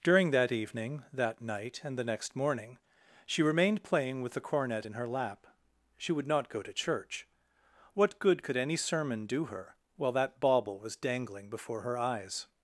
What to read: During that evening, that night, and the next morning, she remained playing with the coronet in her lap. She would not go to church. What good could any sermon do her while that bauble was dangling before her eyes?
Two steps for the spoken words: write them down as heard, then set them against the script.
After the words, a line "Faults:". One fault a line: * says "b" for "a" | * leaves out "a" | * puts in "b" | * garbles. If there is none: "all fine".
During that evening, that night, and the next morning, she remained playing with the cornet in her lap. She would not go to church. What good could any sermon do her while that bauble was dangling before her eyes?
Faults:
* says "cornet" for "coronet"